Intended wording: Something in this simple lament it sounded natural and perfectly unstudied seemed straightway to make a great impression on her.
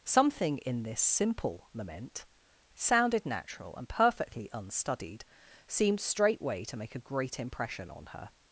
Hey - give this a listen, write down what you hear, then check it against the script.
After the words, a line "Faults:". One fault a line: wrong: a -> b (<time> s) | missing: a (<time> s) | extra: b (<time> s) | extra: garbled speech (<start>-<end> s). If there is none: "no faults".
Something in this simple lament sounded natural and perfectly unstudied seemed straightway to make a great impression on her.
Faults:
missing: it (2.2 s)